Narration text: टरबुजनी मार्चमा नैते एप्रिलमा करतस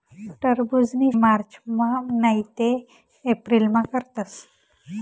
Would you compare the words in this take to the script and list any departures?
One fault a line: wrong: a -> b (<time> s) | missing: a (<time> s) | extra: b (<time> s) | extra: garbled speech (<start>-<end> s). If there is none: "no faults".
no faults